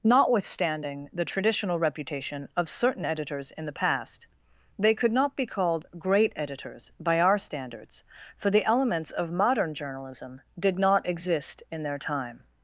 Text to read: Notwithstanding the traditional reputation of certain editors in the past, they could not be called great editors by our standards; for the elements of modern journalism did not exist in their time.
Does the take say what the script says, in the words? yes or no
yes